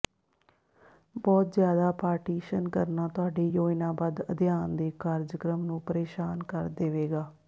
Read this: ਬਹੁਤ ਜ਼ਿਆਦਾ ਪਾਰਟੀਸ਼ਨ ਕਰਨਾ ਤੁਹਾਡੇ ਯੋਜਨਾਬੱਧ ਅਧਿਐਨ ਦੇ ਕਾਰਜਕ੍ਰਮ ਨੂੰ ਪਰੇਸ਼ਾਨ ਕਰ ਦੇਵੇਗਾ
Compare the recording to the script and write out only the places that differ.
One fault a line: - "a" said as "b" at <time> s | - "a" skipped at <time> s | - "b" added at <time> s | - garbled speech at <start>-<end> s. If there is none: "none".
none